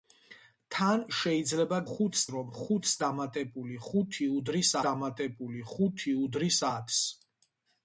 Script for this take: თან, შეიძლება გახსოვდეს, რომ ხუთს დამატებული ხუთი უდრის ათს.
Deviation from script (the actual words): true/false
true